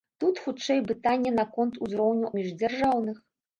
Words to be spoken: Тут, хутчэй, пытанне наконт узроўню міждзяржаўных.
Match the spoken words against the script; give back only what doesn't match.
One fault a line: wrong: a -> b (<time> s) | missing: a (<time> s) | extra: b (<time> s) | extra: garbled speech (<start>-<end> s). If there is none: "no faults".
no faults